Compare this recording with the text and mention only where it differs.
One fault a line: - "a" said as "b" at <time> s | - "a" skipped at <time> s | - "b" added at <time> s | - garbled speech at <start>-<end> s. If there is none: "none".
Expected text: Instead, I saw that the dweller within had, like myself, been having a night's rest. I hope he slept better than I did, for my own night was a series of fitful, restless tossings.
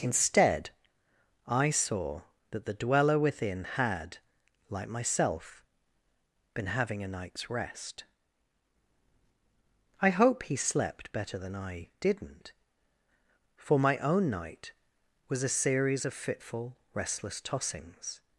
- "did" said as "didn't" at 12.0 s